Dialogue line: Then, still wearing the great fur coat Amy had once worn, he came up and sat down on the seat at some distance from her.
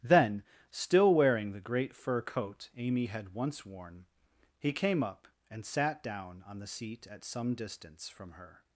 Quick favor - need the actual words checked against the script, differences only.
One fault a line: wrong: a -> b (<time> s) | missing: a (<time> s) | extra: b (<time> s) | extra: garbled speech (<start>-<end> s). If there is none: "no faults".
no faults